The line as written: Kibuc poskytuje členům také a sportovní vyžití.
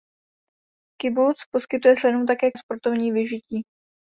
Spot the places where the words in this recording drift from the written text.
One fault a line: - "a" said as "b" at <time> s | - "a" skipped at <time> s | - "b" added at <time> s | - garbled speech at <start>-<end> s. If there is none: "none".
none